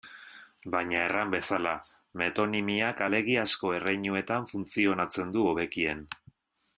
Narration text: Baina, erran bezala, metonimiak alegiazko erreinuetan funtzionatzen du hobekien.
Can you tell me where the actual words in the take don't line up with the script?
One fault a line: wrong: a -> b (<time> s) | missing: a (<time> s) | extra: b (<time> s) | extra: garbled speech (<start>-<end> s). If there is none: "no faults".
no faults